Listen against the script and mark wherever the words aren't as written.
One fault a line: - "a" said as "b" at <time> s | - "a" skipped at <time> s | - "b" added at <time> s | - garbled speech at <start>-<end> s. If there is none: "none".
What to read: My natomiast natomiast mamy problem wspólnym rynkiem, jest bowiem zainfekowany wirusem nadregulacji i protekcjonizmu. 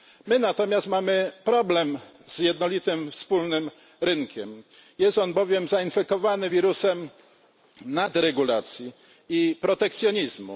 - "natomiast" skipped at 0.9 s
- "z jednolitym" added at 2.2 s
- "on" added at 5.2 s